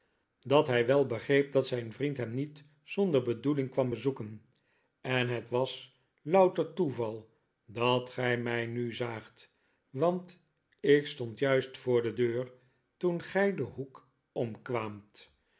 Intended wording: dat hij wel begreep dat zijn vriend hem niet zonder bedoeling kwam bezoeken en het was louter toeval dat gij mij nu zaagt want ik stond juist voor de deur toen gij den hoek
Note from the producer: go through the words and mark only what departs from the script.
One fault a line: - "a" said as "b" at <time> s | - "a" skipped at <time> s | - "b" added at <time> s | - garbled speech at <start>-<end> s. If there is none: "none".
none